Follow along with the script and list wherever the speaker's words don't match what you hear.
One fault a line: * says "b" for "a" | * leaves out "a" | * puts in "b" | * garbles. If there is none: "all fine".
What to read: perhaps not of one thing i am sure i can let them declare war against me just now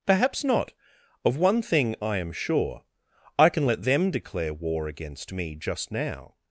all fine